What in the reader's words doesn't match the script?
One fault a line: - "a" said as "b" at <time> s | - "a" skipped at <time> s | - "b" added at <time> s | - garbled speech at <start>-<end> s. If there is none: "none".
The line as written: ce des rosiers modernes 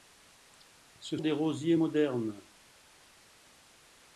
none